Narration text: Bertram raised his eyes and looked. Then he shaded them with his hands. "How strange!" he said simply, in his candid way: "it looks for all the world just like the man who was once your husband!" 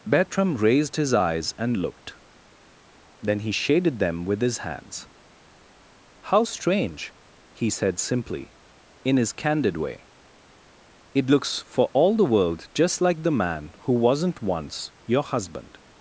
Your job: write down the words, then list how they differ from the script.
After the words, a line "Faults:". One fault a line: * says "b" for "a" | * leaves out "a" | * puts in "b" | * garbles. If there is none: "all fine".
Bertram raised his eyes and looked. Then he shaded them with his hands. "How strange!" he said simply, in his candid way: "it looks for all the world just like the man who wasn't once your husband!"
Faults:
* says "wasn't" for "was"